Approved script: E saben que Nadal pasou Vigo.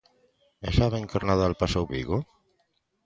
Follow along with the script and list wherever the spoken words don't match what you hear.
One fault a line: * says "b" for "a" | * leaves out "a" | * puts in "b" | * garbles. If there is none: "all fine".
all fine